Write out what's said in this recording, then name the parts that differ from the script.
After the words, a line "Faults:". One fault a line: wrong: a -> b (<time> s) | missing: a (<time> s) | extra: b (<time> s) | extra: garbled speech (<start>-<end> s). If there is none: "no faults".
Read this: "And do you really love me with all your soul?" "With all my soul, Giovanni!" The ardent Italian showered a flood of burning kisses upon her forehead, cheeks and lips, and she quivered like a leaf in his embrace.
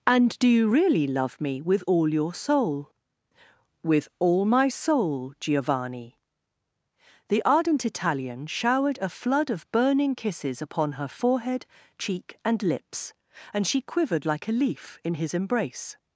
"And do you really love me with all your soul?" "With all my soul, Giovanni!" The ardent Italian showered a flood of burning kisses upon her forehead, cheek and lips, and she quivered like a leaf in his embrace.
Faults:
wrong: cheeks -> cheek (12.0 s)